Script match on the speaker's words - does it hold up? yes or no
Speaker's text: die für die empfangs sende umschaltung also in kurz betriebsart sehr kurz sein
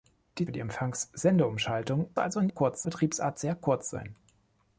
yes